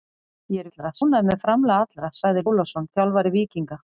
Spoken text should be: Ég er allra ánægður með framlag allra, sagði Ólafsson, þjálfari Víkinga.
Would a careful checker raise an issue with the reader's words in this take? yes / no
no